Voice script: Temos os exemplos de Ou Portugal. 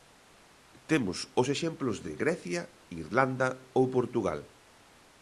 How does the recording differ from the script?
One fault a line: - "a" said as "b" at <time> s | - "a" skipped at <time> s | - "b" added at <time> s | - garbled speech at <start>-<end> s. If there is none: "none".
- "Grecia Irlanda" added at 2.2 s